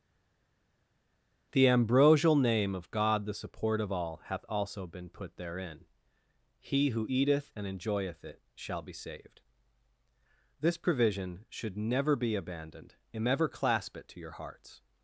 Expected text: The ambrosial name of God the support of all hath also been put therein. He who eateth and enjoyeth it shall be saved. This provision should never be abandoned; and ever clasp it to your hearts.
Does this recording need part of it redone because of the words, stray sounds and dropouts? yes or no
no